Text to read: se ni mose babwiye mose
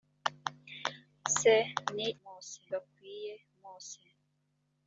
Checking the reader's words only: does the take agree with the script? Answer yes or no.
yes